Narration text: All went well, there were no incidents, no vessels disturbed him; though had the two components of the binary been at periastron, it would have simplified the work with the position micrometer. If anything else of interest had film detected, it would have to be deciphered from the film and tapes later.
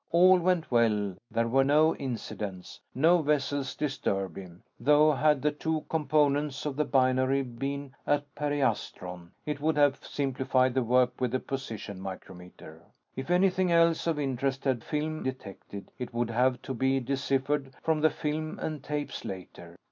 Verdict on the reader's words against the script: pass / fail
pass